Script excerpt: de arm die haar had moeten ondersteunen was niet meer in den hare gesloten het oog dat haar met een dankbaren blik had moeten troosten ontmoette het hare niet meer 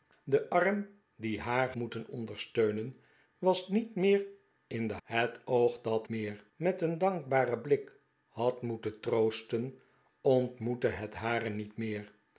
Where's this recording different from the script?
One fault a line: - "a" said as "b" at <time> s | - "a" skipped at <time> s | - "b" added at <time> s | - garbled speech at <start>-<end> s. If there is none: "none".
- "had" skipped at 1.7 s
- "hare gesloten" skipped at 5.0 s
- "haar" said as "meer" at 6.1 s